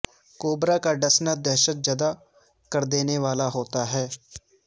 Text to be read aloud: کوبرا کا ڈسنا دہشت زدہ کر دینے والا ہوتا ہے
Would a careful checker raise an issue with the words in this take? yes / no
no